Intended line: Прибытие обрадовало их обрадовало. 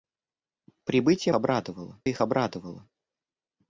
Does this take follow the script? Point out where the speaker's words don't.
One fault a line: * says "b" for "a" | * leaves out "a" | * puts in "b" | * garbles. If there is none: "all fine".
all fine